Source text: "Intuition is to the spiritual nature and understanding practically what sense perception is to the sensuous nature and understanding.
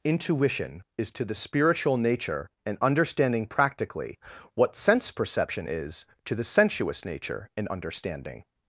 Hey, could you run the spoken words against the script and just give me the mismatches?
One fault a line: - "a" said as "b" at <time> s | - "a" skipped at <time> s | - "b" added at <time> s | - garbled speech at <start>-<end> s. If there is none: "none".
none